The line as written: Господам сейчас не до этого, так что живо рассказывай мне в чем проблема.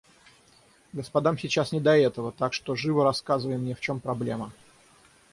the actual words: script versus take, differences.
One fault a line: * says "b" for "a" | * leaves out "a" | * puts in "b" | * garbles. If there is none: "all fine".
all fine